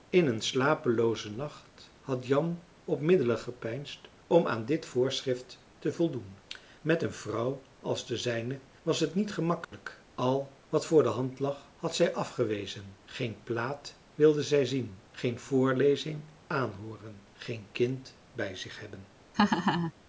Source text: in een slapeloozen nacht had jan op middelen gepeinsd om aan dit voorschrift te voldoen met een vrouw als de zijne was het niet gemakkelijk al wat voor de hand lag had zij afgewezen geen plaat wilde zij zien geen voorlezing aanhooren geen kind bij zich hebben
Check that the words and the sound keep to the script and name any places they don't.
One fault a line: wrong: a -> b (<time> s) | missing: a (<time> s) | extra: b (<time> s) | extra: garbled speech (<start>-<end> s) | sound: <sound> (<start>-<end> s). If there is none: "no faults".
sound: dropout (9.6-9.7 s)
sound: laugh (19.3-19.9 s)